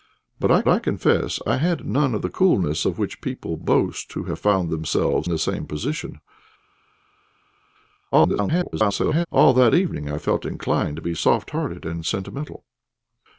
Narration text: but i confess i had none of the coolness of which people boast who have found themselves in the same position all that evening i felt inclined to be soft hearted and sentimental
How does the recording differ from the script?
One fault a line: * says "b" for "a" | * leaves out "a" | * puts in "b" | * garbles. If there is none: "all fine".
* puts in "i"
* leaves out "in"
* garbles